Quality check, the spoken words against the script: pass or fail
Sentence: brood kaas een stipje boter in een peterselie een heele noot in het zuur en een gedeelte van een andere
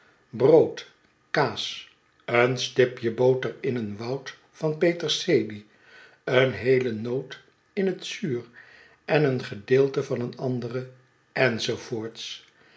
fail